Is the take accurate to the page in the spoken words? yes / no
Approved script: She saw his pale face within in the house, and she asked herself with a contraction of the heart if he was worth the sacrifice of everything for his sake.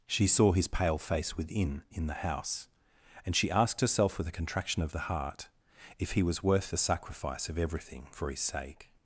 yes